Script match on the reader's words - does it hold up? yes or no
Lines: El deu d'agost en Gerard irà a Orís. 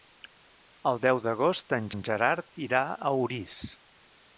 no